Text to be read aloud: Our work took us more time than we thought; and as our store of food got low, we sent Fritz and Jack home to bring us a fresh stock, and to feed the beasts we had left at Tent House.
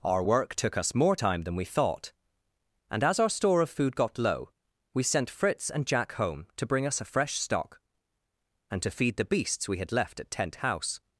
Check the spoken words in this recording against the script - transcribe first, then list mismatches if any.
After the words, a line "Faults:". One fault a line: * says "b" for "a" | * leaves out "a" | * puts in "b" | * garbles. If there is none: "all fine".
Our work took us more time than we thought; and as our store of food got low, we sent Fritz and Jack home to bring us a fresh stock, and to feed the beasts we had left at Tent House.
Faults:
all fine